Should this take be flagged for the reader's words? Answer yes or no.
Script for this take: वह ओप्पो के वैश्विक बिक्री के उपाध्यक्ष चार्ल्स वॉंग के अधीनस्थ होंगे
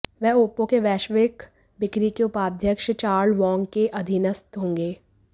no